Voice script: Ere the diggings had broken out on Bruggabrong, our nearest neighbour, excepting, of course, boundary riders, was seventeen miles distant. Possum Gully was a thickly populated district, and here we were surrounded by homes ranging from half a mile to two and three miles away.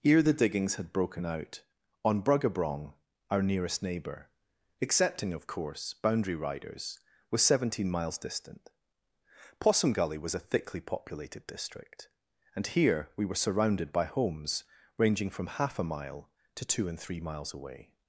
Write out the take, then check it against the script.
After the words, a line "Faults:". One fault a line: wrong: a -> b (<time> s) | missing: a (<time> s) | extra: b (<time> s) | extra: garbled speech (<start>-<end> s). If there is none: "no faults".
Ere the diggings had broken out on Bruggabrong, our nearest neighbour, excepting, of course, boundary riders, was seventeen miles distant. Possum Gully was a thickly populated district, and here we were surrounded by homes ranging from half a mile to two and three miles away.
Faults:
no faults